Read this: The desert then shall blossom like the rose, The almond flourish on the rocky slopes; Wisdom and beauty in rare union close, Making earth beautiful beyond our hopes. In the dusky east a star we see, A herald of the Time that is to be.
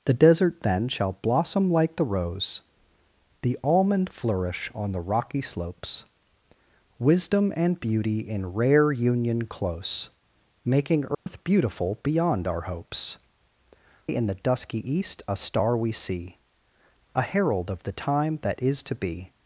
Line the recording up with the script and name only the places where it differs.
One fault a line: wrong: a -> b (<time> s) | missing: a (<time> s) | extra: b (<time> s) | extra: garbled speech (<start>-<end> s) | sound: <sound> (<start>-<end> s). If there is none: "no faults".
sound: dropout (11.1-11.3 s)